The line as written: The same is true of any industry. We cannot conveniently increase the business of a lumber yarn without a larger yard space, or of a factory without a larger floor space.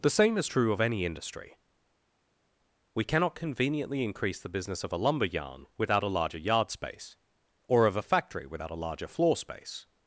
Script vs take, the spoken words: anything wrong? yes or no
no